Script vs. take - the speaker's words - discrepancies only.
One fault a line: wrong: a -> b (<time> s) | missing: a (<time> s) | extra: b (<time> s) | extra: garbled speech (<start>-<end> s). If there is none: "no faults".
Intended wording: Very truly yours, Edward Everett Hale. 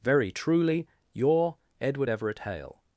wrong: yours -> your (1.1 s)